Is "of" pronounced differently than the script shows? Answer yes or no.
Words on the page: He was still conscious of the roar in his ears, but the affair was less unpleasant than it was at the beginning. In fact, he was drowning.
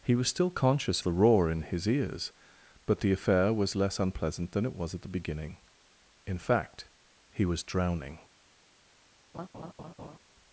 yes